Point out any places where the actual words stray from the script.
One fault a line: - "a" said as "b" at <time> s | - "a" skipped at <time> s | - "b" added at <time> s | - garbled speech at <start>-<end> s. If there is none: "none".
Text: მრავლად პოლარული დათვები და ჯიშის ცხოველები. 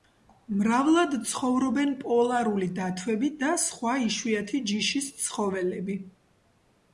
- "ცხოვრობენ" added at 1.3 s
- "სხვა იშვიათი" added at 3.6 s